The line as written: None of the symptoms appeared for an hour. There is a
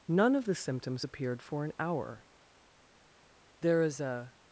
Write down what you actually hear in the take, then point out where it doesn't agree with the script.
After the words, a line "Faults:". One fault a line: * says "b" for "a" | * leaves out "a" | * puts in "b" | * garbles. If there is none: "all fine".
None of the symptoms appeared for an hour. There is a
Faults:
all fine